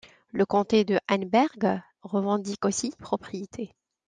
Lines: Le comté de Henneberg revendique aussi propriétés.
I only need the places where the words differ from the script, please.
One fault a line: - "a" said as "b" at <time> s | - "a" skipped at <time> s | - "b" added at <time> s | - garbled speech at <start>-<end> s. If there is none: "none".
none